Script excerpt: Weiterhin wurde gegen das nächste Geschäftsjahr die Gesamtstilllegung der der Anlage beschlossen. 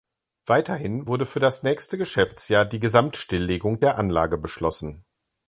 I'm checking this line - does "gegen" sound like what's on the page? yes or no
no